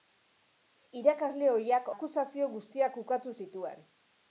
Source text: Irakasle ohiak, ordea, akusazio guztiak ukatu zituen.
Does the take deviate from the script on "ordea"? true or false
true